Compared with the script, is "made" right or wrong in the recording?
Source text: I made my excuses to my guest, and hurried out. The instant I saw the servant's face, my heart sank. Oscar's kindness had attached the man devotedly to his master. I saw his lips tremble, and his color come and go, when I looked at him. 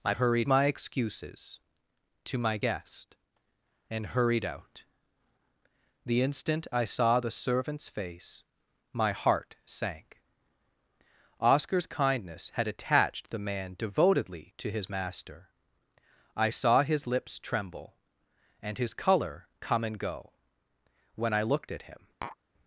wrong